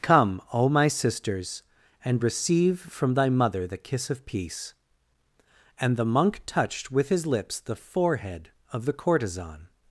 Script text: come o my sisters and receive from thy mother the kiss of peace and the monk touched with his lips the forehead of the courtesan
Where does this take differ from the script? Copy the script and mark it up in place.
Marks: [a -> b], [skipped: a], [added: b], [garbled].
come o my sisters and receive from thy mother the kiss of peace and the monk touched with his lips the forehead of the courtesan